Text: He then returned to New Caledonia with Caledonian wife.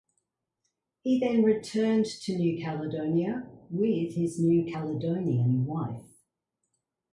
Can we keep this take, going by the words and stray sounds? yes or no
no